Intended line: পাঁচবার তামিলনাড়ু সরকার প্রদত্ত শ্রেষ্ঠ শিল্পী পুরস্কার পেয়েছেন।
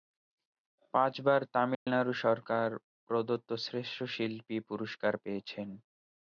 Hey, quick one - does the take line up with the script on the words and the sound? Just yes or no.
no